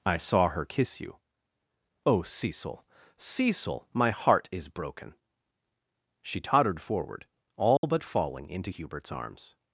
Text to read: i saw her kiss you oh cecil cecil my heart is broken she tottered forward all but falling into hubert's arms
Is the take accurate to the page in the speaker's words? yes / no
yes